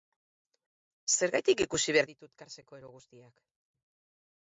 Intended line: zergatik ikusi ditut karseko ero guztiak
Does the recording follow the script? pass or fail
fail